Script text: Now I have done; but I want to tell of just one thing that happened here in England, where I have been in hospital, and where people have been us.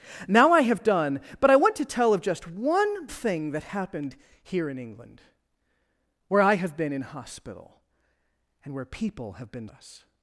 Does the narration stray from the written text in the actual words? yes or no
no